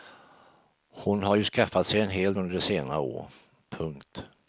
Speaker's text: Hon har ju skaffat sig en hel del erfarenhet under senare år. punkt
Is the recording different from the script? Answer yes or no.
yes